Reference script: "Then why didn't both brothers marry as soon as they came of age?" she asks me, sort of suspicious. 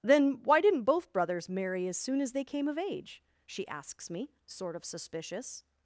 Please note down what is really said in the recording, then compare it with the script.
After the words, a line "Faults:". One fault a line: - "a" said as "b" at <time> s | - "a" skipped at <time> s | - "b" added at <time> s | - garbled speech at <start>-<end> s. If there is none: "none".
"Then why didn't both brothers marry as soon as they came of age?" she asks me, sort of suspicious.
Faults:
none